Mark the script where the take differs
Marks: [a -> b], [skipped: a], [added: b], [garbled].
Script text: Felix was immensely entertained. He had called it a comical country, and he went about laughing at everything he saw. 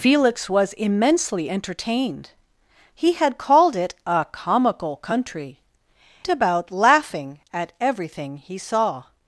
Felix was immensely entertained. He had called it a comical country, [skipped: and he went] about laughing at everything he saw.